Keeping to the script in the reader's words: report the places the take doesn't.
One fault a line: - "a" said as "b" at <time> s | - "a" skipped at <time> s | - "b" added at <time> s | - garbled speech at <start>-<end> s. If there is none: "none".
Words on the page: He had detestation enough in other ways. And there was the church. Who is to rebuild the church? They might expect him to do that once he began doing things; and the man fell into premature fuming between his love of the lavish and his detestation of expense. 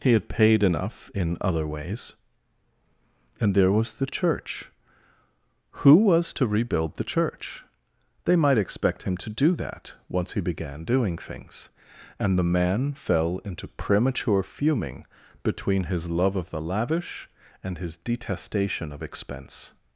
- "detestation" said as "paid" at 0.3 s
- "is" said as "was" at 6.0 s